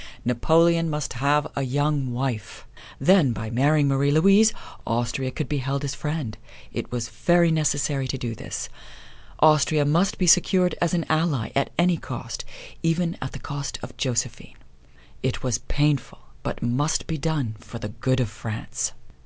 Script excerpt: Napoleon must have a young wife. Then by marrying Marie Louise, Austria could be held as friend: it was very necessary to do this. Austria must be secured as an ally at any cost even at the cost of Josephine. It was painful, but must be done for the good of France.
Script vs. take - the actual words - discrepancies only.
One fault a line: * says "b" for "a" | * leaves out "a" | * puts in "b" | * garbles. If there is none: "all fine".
all fine